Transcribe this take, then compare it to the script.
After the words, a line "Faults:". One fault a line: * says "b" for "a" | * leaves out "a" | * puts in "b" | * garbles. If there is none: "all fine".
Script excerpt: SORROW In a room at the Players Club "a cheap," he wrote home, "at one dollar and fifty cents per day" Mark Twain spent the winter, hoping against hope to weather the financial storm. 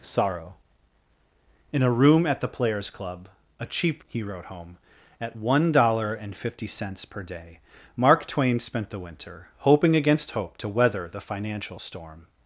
SORROW In a room at the Players Club "a cheap," he wrote home, "at one dollar and fifty cents per day" Mark Twain spent the winter, hoping against hope to weather the financial storm.
Faults:
all fine